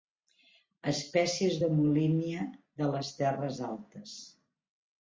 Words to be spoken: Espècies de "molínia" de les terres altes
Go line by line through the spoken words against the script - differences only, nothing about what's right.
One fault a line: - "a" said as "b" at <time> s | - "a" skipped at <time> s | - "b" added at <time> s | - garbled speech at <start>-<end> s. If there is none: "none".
none